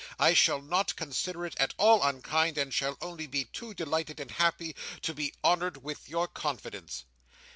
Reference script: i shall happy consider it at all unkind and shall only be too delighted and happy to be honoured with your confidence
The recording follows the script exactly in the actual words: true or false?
false